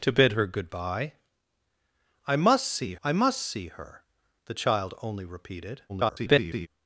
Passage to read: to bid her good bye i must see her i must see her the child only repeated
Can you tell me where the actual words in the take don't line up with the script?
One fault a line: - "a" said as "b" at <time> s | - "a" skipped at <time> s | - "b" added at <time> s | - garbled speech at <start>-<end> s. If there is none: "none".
- "her" skipped at 3.0 s
- garbled speech at 5.9-6.7 s